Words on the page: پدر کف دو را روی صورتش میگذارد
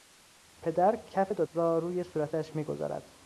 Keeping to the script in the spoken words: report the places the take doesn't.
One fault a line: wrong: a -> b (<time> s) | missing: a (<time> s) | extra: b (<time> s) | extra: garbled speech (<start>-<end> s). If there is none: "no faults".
no faults